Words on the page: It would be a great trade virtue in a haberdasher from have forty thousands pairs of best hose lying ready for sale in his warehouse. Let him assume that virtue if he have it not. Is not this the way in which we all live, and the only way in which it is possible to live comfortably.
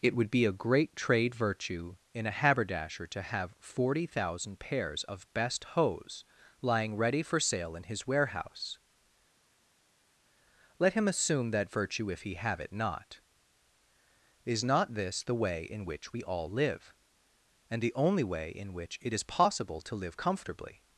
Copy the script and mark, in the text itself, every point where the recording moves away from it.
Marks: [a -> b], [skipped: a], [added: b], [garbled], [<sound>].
It would be a great trade virtue in a haberdasher [from -> to] have forty [thousands -> thousand] pairs of best hose lying ready for sale in his warehouse. Let him assume that virtue if he have it not. Is not this the way in which we all live, and the only way in which it is possible to live comfortably.